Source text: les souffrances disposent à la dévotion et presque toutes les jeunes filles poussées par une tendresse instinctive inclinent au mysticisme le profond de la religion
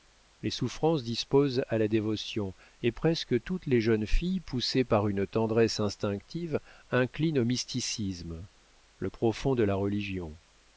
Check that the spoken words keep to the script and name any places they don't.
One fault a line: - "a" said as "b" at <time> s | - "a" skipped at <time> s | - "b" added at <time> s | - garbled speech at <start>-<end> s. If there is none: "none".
none